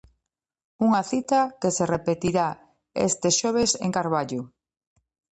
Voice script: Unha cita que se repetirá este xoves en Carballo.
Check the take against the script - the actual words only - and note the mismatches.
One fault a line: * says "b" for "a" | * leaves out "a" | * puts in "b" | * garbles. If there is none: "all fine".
all fine